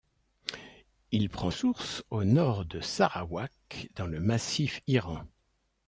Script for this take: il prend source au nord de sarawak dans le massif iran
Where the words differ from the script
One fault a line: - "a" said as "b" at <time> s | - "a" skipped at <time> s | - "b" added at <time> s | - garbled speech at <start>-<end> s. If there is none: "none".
none